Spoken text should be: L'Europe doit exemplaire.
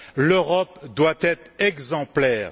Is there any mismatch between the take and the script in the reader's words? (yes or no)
yes